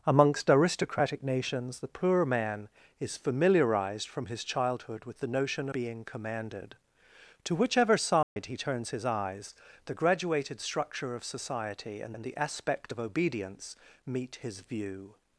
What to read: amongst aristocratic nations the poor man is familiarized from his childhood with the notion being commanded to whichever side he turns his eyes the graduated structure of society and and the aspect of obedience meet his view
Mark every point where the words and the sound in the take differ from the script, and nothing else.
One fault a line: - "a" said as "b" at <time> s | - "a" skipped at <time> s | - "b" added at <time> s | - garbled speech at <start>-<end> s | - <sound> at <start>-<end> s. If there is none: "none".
- dropout at 8.2-8.4 s